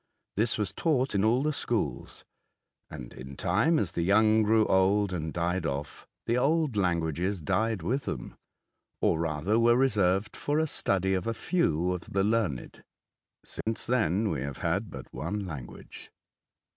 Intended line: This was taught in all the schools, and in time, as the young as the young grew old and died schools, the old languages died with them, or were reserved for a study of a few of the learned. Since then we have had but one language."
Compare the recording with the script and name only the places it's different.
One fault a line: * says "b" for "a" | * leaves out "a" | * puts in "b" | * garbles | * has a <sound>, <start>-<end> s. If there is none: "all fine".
* leaves out "as the young"
* says "off" for "schools"
* puts in "rather"
* has a dropout, 13.6-13.7 s